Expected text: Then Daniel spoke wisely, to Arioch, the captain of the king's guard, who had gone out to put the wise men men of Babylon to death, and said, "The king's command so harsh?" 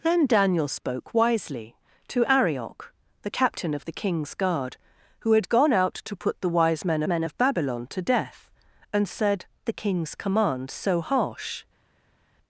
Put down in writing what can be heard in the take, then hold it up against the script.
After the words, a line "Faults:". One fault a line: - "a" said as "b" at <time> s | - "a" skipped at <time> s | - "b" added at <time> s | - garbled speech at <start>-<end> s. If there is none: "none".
Then Daniel spoke wisely, to Arioch, the captain of the king's guard, who had gone out to put the wise men men of Babylon to death, and said, "The king's command so harsh?"
Faults:
none